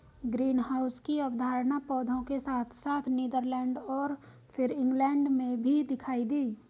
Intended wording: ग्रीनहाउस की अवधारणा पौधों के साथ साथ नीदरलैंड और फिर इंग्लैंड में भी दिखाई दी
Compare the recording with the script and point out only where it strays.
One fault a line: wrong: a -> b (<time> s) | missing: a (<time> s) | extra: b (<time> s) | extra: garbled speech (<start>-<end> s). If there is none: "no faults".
no faults